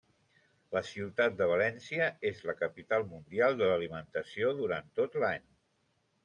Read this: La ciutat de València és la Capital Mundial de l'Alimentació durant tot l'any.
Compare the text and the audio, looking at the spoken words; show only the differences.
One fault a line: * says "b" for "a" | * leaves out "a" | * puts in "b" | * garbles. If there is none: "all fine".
all fine